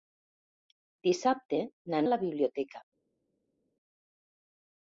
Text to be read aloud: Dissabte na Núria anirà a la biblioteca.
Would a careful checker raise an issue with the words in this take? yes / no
yes